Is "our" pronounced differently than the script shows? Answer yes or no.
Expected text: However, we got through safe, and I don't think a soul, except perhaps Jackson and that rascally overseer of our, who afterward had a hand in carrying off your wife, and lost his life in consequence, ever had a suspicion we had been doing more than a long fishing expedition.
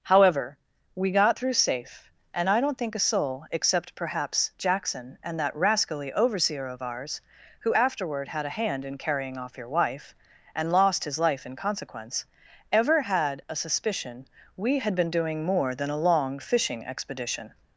yes